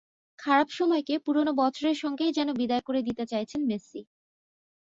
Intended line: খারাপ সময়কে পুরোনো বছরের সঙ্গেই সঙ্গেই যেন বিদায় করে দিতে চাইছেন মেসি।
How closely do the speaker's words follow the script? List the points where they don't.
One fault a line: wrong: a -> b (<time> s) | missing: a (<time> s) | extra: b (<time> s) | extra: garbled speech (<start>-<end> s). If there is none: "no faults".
missing: সঙ্গেই (2.4 s)